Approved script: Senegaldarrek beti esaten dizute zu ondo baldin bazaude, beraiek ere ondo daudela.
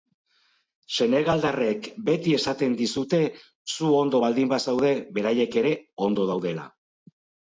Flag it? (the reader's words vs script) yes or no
no